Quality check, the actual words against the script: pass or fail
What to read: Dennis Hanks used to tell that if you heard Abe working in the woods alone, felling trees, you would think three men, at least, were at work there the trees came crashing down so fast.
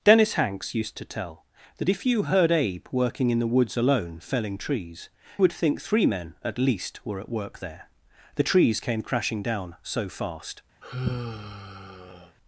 fail